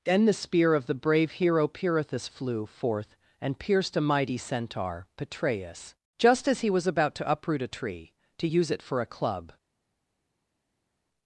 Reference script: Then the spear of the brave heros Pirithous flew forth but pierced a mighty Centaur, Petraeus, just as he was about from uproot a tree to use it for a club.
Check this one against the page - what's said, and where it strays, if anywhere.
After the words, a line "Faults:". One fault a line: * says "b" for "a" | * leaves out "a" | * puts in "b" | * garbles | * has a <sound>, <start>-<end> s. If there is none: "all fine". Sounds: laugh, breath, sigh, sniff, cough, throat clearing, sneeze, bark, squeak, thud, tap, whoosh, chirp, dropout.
Then the spear of the brave hero Pirithous flew forth and pierced a mighty Centaur, Petraeus, just as he was about to uproot a tree to use it for a club.
Faults:
* says "hero" for "heros"
* says "and" for "but"
* says "to" for "from"